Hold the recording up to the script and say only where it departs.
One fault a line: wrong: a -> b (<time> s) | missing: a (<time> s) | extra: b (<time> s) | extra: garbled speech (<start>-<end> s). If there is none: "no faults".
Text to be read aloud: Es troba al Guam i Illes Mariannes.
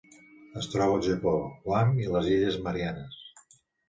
extra: Japó (1.1 s)
extra: les (2.1 s)